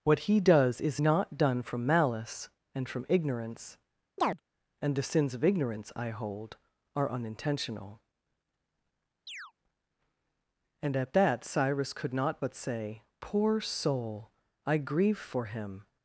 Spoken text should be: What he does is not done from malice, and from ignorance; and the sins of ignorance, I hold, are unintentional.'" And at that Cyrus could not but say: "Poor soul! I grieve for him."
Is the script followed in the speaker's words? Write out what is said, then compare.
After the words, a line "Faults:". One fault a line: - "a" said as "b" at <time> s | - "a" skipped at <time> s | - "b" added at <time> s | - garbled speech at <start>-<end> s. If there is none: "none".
What he does is not done from malice, and from ignorance; and the sins of ignorance, I hold, are unintentional.'" And at that Cyrus could not but say: "Poor soul! I grieve for him."
Faults:
none